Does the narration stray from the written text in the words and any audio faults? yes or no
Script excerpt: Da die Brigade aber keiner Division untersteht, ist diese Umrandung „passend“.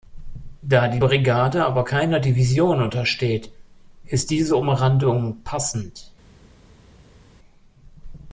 no